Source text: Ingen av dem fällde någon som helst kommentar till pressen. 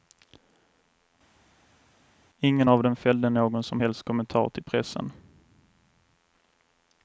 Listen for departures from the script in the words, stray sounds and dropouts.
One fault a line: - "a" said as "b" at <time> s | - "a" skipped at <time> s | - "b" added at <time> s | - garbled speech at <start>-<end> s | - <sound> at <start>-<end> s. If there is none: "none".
none